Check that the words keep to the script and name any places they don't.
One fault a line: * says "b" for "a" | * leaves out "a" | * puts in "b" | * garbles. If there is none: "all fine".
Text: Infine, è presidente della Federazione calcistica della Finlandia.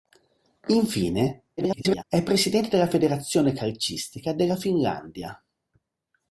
* garbles